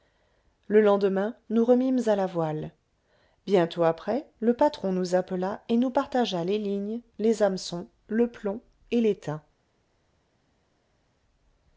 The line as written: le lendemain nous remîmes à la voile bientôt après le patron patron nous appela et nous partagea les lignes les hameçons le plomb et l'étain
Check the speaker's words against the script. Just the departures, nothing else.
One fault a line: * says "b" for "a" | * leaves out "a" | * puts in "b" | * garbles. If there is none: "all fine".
* leaves out "patron"